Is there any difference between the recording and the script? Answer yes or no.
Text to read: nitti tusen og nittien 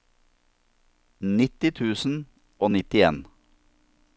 no